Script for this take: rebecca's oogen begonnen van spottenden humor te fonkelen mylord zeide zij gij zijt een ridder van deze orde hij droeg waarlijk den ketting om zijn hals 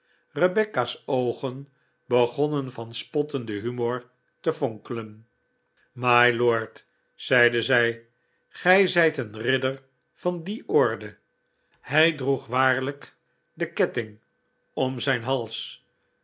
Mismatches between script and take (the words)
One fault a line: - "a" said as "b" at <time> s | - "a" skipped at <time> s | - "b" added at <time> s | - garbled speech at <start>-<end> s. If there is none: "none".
- "deze" said as "die" at 10.4 s